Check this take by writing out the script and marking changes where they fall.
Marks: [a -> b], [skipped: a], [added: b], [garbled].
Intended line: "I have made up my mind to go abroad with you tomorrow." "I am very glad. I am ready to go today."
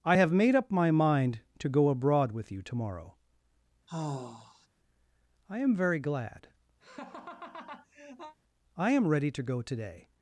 "I have made up my mind to go abroad with you tomorrow." "I am very glad. I am ready to go today."